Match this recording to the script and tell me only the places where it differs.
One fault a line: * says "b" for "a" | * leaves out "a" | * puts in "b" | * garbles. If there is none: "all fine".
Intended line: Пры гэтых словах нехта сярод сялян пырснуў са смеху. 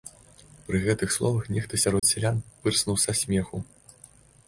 all fine